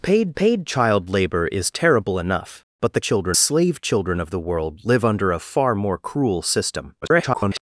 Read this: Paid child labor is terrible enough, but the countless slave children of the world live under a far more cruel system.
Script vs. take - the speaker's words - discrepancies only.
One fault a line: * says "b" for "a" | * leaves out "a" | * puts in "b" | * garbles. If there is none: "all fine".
* puts in "paid"
* says "children" for "countless"
* garbles